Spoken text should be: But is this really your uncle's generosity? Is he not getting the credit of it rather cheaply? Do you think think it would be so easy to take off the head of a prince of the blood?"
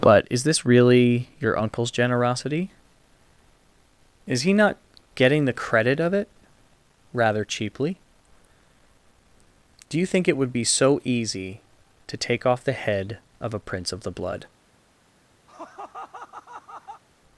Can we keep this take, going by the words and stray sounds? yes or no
no